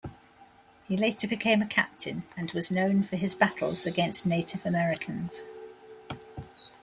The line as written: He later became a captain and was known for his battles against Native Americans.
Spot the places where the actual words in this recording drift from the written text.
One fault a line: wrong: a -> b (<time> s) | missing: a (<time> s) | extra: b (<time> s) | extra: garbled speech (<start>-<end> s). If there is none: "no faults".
no faults